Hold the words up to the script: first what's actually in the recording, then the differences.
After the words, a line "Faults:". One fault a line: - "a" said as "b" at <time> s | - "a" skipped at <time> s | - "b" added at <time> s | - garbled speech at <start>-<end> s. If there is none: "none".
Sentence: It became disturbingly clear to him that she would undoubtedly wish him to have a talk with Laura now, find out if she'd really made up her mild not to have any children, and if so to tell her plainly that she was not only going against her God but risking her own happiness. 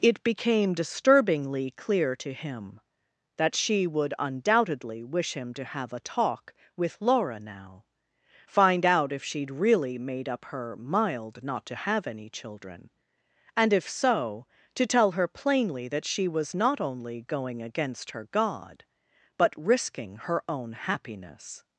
It became disturbingly clear to him that she would undoubtedly wish him to have a talk with Laura now, find out if she'd really made up her mild not to have any children, and if so to tell her plainly that she was not only going against her God but risking her own happiness.
Faults:
none